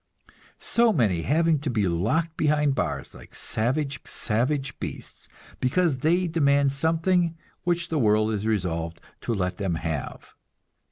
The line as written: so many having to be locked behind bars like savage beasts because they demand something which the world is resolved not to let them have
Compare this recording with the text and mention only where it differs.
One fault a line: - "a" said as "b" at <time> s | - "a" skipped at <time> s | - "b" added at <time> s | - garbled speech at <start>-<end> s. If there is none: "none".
- "savage" added at 4.1 s
- "not" skipped at 9.0 s